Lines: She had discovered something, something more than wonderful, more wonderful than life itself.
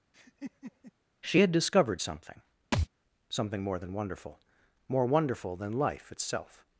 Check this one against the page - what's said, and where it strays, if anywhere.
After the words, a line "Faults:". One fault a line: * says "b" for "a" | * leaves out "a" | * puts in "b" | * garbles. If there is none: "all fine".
She had discovered something, something more than wonderful, more wonderful than life itself.
Faults:
all fine